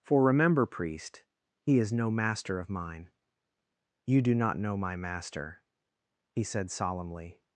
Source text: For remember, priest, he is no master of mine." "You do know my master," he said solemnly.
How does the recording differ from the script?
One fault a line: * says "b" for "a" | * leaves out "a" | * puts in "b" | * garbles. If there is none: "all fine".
* puts in "not"